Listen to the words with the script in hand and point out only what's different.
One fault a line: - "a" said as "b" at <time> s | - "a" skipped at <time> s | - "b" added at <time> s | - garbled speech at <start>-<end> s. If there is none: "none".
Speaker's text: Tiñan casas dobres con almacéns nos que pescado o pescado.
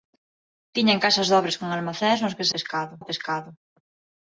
none